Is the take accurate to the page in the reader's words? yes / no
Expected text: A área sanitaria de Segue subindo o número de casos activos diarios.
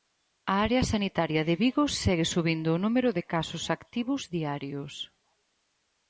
no